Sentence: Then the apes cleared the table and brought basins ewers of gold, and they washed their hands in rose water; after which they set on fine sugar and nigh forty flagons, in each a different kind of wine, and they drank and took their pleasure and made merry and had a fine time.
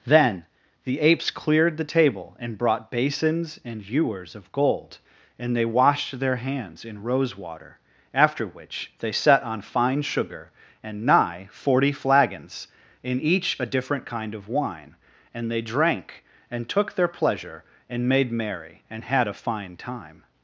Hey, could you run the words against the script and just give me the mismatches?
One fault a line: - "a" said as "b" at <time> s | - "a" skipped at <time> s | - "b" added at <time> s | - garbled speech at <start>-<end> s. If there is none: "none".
- "and" added at 3.6 s